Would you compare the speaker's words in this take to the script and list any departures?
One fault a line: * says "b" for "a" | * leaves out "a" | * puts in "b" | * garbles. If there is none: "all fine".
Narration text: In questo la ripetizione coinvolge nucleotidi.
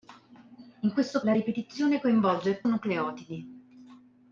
all fine